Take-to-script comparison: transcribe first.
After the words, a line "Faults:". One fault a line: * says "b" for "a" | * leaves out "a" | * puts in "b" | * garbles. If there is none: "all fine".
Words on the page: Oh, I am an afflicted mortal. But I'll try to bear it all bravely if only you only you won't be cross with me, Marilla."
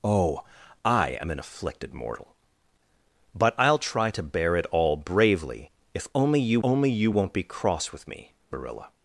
Oh, I am an afflicted mortal. But I'll try to bear it all bravely if only you only you won't be cross with me, Marilla."
Faults:
all fine